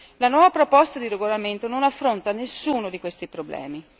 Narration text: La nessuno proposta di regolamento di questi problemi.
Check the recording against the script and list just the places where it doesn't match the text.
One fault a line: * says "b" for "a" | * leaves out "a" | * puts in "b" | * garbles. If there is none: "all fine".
* says "nuova" for "nessuno"
* puts in "non affronta nessuno"